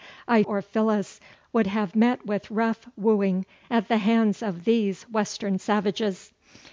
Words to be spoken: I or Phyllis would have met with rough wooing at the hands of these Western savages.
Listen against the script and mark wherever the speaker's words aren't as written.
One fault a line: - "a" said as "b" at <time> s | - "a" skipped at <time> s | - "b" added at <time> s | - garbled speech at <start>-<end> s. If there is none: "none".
none